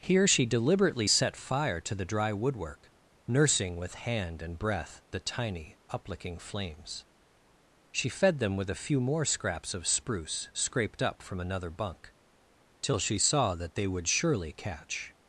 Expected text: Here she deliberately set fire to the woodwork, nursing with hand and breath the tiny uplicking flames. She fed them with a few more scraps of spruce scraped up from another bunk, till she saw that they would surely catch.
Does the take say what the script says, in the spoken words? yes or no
no